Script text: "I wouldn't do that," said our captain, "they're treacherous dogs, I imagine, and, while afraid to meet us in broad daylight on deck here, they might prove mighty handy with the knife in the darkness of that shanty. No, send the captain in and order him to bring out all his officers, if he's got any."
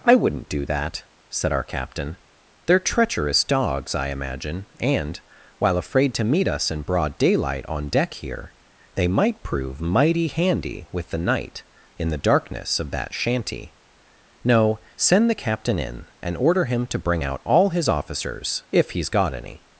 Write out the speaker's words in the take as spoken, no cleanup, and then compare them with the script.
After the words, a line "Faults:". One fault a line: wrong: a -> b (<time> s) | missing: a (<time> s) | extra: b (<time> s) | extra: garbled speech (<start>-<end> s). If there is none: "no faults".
"I wouldn't do that," said our captain, "they're treacherous dogs, I imagine, and, while afraid to meet us in broad daylight on deck here, they might prove mighty handy with the night in the darkness of that shanty. No, send the captain in and order him to bring out all his officers, if he's got any."
Faults:
wrong: knife -> night (11.2 s)